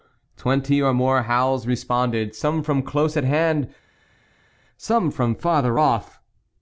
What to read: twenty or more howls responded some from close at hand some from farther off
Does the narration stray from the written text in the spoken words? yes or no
no